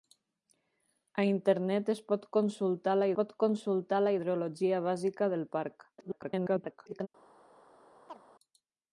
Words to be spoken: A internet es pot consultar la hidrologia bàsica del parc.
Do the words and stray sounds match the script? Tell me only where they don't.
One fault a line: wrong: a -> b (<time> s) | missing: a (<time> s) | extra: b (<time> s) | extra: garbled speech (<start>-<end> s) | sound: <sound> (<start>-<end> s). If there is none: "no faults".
extra: pot consultar la (3.2 s)
extra: garbled speech (6.0-7.1 s)
sound: chirp (8.1-8.2 s)